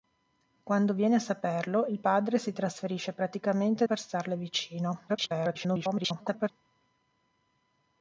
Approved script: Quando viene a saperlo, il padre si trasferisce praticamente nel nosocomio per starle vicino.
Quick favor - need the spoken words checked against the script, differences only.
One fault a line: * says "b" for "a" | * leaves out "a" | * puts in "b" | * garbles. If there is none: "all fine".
* leaves out "nel nosocomio"
* garbles